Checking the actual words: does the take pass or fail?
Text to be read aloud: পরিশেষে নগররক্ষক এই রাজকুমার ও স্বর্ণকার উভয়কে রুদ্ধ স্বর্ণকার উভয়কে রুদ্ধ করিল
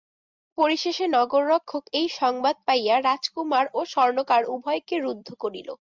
fail